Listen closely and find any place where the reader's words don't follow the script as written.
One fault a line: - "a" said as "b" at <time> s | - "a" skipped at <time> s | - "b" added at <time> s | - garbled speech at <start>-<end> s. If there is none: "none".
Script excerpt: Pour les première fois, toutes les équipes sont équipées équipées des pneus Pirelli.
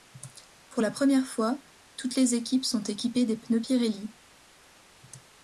- "les" said as "la" at 0.8 s
- "équipées" skipped at 3.3 s